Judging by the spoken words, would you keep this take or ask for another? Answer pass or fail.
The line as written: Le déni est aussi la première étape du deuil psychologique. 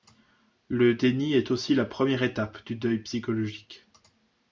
pass